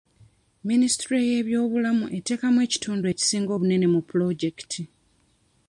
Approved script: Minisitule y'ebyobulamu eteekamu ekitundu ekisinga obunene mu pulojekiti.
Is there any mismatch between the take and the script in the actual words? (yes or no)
no